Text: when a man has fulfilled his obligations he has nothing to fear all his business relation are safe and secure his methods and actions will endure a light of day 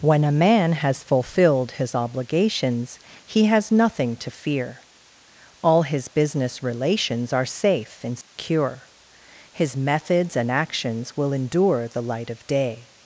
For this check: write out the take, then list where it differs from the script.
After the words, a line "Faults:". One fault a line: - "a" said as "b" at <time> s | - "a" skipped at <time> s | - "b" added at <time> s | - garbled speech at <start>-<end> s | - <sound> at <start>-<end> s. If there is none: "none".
when a man has fulfilled his obligations he has nothing to fear all his business relations are safe and secure his methods and actions will endure the light of day
Faults:
- "relation" said as "relations" at 6.6 s
- dropout at 8.2-8.4 s
- "a" said as "the" at 11.9 s